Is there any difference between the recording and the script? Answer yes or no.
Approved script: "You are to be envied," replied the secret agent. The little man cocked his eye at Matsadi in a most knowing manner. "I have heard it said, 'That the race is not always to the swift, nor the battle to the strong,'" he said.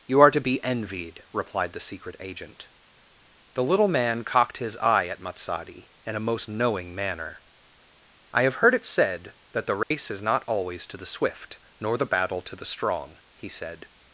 no